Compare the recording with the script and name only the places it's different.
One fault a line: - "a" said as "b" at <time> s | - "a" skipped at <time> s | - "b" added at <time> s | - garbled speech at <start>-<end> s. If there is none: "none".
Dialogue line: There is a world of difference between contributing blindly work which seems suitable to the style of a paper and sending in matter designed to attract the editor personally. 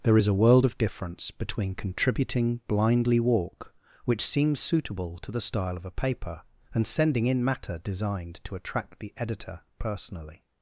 - "work" said as "walk" at 3.2 s